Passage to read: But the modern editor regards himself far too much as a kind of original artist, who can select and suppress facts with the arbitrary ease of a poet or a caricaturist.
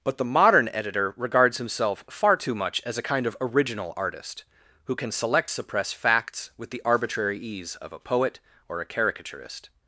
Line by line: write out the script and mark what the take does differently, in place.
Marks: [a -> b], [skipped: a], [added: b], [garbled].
But the modern editor regards himself far too much as a kind of original artist, who can select [skipped: and] suppress facts with the arbitrary ease of a poet or a caricaturist.